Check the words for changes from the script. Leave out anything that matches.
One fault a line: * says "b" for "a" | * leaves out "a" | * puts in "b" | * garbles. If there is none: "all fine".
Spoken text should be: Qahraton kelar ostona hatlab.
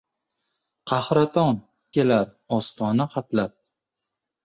all fine